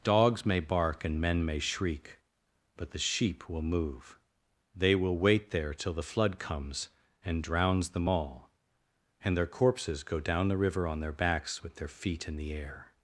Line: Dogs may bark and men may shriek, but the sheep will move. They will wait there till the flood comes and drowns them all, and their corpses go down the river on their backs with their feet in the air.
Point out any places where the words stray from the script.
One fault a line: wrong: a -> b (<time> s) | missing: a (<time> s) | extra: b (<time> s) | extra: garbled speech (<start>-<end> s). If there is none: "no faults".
no faults